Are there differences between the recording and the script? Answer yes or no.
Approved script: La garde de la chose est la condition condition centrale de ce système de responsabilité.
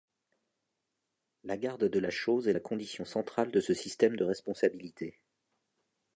yes